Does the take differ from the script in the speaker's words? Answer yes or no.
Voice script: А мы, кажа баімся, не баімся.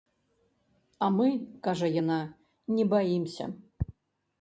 yes